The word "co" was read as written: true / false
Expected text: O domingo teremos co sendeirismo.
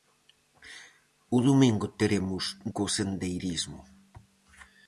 true